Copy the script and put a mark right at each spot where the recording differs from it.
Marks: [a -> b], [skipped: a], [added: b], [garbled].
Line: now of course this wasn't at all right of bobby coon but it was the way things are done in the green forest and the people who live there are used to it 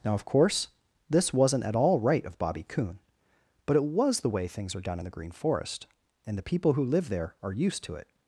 now of course this wasn't at all right of bobby coon but it was the way things are done in the green forest and the people who live there are used to it